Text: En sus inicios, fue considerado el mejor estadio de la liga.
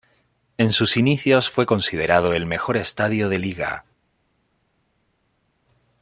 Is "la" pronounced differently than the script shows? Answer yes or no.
yes